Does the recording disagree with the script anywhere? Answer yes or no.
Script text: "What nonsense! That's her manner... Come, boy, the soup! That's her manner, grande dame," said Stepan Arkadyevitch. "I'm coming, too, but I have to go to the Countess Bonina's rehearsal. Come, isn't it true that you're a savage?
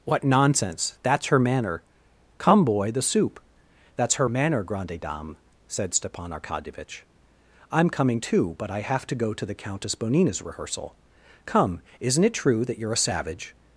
no